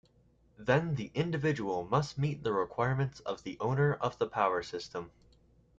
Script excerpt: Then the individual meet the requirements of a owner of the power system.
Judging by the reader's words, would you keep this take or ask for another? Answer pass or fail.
fail